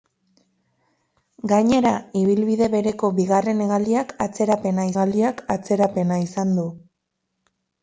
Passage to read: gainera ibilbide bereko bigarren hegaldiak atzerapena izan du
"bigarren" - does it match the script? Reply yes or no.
yes